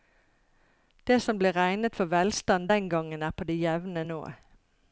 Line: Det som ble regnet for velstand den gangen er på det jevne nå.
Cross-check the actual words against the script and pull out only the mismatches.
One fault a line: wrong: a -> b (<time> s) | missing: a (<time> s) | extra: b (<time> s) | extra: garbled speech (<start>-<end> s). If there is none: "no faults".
no faults